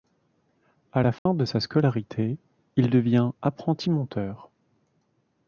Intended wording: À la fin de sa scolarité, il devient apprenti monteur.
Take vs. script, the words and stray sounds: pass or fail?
fail